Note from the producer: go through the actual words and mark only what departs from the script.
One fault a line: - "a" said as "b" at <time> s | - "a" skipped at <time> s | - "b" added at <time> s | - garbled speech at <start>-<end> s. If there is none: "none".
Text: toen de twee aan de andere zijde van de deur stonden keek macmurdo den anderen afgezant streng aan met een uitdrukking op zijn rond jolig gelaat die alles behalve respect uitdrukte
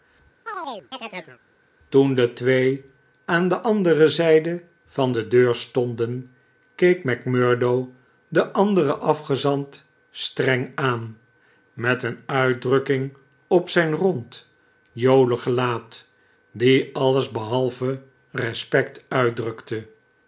none